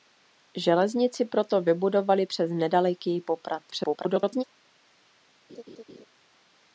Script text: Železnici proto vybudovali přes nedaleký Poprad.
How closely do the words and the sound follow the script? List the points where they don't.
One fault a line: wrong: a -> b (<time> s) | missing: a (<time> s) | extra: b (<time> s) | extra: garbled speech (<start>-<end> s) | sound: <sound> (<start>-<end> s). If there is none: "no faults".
extra: garbled speech (3.7-4.4 s)
sound: laugh (5.5-6.1 s)